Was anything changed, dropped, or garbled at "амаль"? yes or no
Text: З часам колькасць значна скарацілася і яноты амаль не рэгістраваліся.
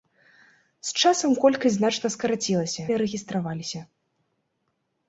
yes